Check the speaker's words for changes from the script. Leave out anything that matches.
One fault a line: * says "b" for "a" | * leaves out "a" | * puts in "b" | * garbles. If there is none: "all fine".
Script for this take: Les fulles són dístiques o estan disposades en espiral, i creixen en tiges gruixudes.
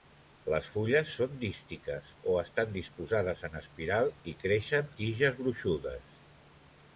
* leaves out "en"